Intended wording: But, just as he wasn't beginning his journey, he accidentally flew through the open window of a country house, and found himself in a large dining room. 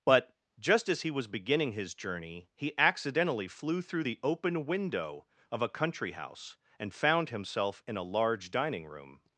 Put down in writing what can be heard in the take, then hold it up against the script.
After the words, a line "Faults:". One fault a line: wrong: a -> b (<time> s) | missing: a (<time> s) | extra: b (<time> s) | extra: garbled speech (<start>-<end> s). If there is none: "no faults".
But, just as he was beginning his journey, he accidentally flew through the open window of a country house, and found himself in a large dining room.
Faults:
wrong: wasn't -> was (1.1 s)